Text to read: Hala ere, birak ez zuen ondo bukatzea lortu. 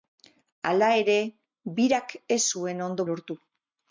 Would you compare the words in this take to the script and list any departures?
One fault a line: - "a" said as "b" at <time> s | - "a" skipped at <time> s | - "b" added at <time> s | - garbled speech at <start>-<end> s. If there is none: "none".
- "bukatzea" skipped at 3.0 s